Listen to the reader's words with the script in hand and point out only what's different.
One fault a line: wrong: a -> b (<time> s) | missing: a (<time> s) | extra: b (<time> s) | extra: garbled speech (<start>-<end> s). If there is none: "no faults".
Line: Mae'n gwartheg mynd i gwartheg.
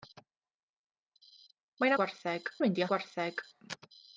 no faults